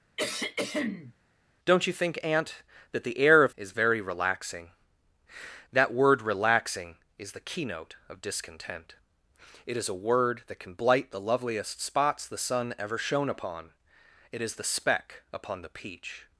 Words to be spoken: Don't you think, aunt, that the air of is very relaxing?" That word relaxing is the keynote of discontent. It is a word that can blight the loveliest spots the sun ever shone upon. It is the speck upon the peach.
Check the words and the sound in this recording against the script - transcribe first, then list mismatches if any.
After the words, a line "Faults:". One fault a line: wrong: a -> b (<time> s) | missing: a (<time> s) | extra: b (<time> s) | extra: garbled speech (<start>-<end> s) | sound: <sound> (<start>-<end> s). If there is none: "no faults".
Don't you think, aunt, that the air of is very relaxing?" That word relaxing is the keynote of discontent. It is a word that can blight the loveliest spots the sun ever shone upon. It is the speck upon the peach.
Faults:
sound: throat clearing (0.2-1.1 s)